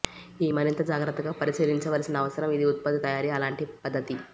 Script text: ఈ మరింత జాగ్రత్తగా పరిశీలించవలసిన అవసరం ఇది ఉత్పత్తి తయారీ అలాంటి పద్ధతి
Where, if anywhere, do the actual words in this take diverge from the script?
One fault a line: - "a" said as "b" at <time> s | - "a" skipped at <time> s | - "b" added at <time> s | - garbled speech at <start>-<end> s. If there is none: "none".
none